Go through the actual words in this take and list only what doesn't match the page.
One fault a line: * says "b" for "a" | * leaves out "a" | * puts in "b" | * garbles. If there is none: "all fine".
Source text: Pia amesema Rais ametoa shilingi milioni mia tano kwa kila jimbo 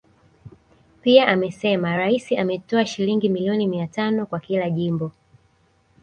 all fine